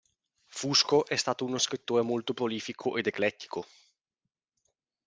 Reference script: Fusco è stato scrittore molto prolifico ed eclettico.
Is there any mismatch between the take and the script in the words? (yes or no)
yes